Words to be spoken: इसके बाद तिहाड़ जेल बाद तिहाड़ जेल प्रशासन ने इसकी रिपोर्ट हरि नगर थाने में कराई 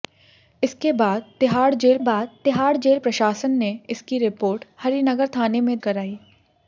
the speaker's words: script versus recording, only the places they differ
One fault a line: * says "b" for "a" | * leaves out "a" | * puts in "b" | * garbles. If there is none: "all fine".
all fine